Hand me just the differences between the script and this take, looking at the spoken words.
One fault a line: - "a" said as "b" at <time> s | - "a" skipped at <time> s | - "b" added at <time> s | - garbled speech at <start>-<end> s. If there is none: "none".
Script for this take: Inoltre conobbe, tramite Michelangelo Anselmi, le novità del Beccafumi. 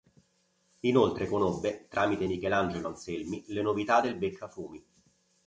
none